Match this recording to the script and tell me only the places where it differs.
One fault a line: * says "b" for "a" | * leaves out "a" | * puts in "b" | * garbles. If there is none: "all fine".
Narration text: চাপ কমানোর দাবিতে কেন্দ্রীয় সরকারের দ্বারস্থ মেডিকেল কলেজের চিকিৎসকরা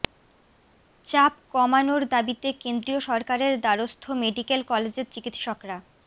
all fine